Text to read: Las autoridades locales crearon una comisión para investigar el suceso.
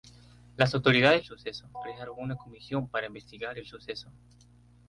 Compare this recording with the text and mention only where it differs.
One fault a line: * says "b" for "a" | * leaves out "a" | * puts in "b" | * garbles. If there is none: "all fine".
* says "suceso" for "locales"